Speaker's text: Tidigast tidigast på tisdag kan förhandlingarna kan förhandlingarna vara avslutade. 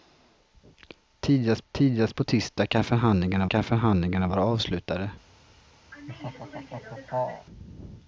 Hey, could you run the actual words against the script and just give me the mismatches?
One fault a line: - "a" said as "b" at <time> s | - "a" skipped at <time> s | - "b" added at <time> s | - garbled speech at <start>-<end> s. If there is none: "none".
none